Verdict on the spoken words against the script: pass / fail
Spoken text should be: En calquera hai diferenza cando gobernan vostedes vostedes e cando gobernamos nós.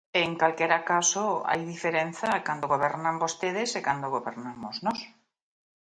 fail